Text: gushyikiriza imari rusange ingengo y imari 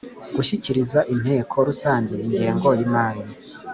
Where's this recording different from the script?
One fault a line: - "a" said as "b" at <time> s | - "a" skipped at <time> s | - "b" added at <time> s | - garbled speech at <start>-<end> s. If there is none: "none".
- "imari" said as "inteko" at 1.1 s